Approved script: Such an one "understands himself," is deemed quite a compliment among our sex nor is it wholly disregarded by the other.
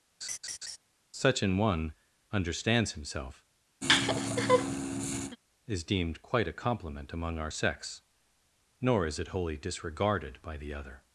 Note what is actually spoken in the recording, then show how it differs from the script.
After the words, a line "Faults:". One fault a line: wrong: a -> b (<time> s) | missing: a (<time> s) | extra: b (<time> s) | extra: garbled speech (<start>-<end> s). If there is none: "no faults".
Such an one "understands himself," is deemed quite a compliment among our sex nor is it wholly disregarded by the other.
Faults:
no faults